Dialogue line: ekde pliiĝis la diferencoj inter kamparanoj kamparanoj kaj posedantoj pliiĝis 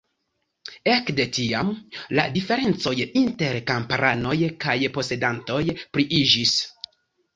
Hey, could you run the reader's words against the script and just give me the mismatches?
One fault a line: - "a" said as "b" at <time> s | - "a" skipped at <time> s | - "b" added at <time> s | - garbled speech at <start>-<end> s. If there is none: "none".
- "pliiĝis" said as "tiam" at 1.4 s
- "kamparanoj" skipped at 4.4 s